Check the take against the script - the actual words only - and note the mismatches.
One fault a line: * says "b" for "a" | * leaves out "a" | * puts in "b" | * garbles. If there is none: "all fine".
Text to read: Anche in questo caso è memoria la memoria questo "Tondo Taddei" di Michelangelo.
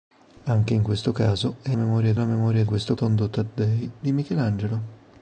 all fine